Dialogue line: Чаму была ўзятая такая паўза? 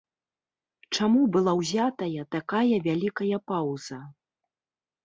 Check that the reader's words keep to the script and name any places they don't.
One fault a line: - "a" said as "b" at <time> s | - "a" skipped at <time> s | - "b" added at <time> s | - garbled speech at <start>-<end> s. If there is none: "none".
- "вялікая" added at 2.9 s